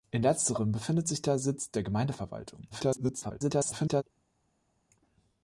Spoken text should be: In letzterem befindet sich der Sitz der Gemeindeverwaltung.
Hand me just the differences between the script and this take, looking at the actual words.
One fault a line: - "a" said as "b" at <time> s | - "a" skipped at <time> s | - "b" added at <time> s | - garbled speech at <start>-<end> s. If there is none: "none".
- garbled speech at 2.7-4.0 s